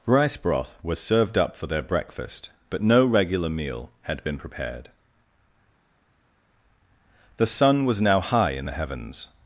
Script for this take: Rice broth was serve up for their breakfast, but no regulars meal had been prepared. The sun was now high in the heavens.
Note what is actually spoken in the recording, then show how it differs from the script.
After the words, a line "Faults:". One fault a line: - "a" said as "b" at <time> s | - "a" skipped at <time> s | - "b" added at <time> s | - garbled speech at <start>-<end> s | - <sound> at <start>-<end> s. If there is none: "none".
Rice broth was served up for their breakfast, but no regular meal had been prepared. The sun was now high in the heavens.
Faults:
- "serve" said as "served" at 1.0 s
- "regulars" said as "regular" at 3.0 s